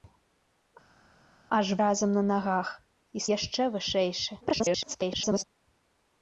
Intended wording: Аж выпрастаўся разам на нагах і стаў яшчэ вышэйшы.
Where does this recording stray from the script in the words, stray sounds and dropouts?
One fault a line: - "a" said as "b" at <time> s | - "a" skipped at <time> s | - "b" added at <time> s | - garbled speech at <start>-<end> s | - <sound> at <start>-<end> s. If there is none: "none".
- "выпрастаўся" skipped at 1.7 s
- "стаў" skipped at 3.2 s
- garbled speech at 4.4-5.4 s